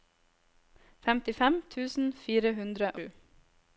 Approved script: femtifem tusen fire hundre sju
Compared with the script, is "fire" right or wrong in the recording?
right